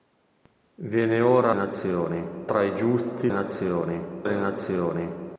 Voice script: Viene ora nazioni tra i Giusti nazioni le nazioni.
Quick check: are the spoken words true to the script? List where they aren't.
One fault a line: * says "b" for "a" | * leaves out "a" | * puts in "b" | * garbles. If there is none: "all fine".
all fine